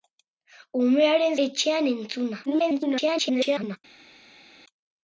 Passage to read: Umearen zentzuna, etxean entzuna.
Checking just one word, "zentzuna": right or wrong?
wrong